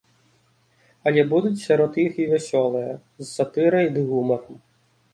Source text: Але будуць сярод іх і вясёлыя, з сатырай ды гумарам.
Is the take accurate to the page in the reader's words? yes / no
yes